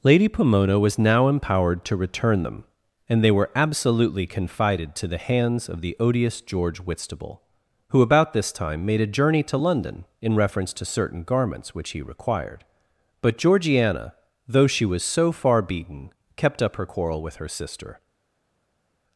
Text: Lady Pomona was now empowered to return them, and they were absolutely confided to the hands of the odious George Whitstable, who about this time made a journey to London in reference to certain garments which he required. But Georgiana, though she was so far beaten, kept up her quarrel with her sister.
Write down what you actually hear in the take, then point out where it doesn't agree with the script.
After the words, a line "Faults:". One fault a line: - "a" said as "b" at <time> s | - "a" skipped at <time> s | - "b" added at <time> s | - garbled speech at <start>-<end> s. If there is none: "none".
Lady Pomona was now empowered to return them, and they were absolutely confided to the hands of the odious George Whitstable, who about this time made a journey to London in reference to certain garments which he required. But Georgiana, though she was so far beaten, kept up her quarrel with her sister.
Faults:
none